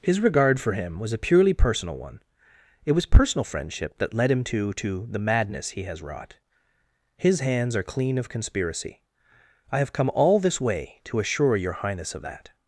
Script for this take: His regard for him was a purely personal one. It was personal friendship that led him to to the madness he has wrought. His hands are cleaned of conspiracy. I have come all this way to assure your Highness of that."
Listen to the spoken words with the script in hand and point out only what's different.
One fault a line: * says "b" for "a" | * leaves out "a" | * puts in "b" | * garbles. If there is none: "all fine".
* says "clean" for "cleaned"